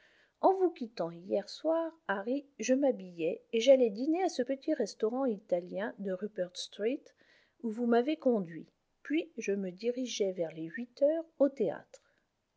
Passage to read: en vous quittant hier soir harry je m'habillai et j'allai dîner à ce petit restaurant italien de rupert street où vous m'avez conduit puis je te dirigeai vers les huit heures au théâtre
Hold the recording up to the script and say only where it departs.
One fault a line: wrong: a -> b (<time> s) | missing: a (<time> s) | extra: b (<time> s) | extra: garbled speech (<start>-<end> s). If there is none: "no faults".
wrong: te -> me (9.5 s)